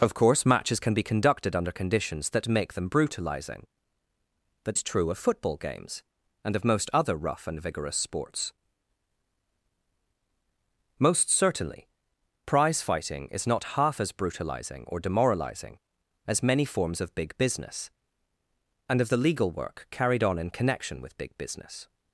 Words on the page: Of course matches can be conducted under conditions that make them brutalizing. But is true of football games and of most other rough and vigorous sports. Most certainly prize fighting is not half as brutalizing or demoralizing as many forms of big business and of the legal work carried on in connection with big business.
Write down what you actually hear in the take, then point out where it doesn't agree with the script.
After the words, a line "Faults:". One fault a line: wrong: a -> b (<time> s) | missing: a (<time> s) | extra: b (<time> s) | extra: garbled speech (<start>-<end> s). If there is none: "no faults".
Of course matches can be conducted under conditions that make them brutalizing. But is true of football games and of most other rough and vigorous sports. Most certainly prize fighting is not half as brutalizing or demoralizing as many forms of big business and of the legal work carried on in connection with big business.
Faults:
no faults